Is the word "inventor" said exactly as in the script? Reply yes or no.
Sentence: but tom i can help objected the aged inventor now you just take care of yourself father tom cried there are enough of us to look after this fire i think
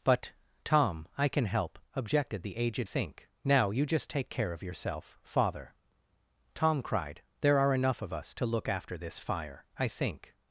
no